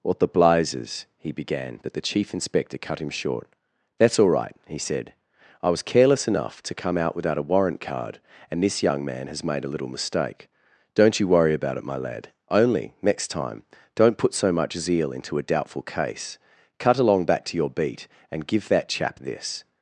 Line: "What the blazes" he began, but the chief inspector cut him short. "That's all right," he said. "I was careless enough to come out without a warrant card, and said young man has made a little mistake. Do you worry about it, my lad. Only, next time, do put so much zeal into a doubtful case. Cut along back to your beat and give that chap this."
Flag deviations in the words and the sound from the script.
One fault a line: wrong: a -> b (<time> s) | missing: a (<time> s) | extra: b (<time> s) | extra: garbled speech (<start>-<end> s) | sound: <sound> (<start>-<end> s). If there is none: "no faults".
wrong: said -> this (8.6 s)
wrong: Do -> Don't (10.9 s)
wrong: do -> don't (13.9 s)